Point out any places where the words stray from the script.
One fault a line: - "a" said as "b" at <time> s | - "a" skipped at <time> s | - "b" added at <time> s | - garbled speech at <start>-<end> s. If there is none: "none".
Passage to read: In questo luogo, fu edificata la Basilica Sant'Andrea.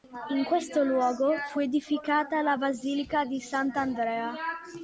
- "di" added at 3.2 s